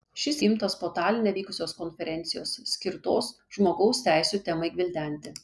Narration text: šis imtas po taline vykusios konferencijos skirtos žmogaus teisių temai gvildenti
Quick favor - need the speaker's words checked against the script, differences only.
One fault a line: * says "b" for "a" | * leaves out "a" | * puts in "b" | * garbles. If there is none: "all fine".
all fine